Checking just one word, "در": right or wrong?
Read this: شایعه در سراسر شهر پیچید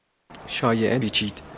wrong